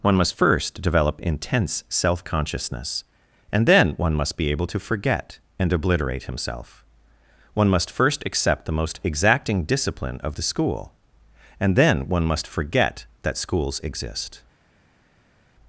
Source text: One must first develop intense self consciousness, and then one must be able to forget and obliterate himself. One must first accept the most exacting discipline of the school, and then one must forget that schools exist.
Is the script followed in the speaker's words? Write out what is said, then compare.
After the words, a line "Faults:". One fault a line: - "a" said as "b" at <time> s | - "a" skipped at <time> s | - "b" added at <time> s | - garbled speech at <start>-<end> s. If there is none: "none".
One must first develop intense self consciousness, and then one must be able to forget and obliterate himself. One must first accept the most exacting discipline of the school, and then one must forget that schools exist.
Faults:
none